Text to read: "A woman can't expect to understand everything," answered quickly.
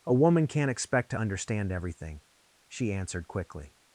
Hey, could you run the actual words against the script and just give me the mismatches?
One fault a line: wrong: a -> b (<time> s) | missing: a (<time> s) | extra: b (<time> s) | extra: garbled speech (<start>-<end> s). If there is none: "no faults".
extra: she (2.7 s)